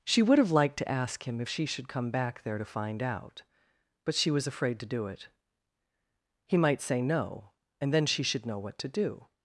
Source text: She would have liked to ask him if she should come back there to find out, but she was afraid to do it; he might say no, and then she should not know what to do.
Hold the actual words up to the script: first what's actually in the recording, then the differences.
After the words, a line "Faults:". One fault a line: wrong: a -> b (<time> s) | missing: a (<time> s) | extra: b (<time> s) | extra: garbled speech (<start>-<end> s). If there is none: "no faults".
She would have liked to ask him if she should come back there to find out, but she was afraid to do it; he might say no, and then she should know what to do.
Faults:
missing: not (8.5 s)